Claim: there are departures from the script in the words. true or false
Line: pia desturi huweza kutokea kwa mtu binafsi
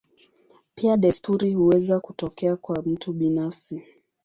false